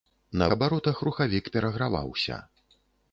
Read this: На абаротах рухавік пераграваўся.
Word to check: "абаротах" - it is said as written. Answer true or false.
true